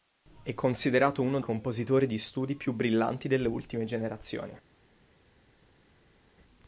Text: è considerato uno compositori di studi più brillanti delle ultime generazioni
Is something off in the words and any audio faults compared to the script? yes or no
no